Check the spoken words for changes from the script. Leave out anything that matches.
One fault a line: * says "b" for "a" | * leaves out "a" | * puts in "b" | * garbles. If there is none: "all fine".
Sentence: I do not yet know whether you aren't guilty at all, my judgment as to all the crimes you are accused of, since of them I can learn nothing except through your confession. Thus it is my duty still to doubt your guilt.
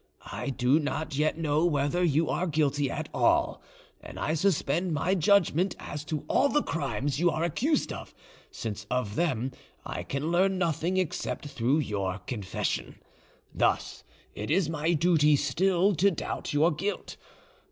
* says "are" for "aren't"
* puts in "and I suspend"